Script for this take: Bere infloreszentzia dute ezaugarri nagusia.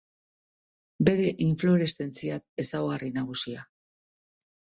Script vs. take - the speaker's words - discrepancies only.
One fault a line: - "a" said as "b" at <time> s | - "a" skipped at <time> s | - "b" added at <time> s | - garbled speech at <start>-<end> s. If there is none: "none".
- "dute" skipped at 2.4 s